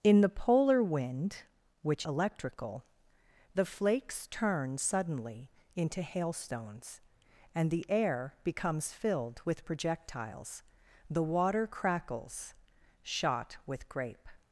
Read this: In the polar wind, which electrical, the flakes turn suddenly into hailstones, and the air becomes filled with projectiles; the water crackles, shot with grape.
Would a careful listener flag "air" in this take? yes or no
no